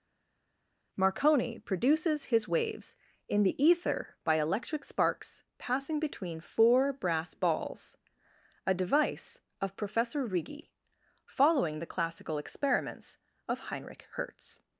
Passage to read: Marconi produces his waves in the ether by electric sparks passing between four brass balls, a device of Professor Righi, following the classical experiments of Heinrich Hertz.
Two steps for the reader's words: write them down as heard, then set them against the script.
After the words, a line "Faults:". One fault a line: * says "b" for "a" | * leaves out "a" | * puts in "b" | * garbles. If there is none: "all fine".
Marconi produces his waves in the ether by electric sparks passing between four brass balls, a device of Professor Righi, following the classical experiments of Heinrich Hertz.
Faults:
all fine